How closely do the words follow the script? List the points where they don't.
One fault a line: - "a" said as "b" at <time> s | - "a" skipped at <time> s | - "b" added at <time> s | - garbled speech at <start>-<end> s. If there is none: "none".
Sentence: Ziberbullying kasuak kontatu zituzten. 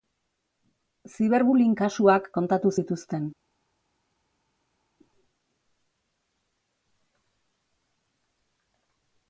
none